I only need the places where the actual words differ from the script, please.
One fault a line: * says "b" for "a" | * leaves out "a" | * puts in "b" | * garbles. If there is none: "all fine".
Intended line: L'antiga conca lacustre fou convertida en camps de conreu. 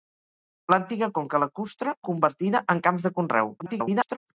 * leaves out "fou"
* garbles